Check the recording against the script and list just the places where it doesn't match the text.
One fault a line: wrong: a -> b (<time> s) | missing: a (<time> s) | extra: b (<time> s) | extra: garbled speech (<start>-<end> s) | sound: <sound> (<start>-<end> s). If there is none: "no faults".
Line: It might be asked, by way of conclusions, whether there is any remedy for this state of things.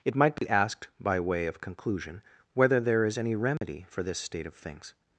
sound: dropout (0.4-0.4 s)
wrong: conclusions -> conclusion (1.6 s)
sound: dropout (3.6-3.6 s)